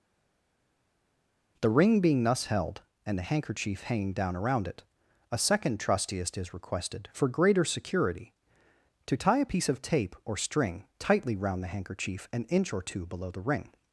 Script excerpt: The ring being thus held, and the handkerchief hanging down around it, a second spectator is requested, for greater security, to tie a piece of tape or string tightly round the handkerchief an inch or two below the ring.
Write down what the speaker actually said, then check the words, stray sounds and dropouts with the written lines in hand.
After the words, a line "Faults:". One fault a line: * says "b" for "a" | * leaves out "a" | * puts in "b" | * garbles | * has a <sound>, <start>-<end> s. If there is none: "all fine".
The ring being thus held, and the handkerchief hanging down around it, a second trustiest is requested, for greater security, to tie a piece of tape or string tightly round the handkerchief an inch or two below the ring.
Faults:
* says "trustiest" for "spectator"